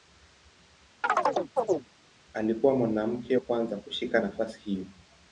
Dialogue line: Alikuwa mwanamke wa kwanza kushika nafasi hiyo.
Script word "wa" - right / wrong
wrong